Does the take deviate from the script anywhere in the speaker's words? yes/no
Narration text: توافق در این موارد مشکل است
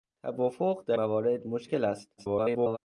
yes